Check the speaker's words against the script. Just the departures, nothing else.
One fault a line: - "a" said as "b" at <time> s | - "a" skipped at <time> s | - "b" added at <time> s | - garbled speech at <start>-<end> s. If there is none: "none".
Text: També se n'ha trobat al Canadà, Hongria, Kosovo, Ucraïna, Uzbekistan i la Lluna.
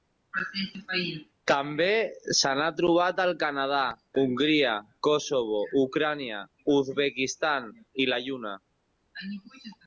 none